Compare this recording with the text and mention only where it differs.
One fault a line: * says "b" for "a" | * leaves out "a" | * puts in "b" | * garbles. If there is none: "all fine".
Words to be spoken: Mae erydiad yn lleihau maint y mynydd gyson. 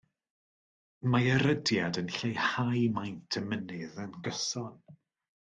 * puts in "yn"